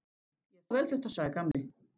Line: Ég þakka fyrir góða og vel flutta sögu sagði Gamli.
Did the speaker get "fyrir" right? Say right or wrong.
wrong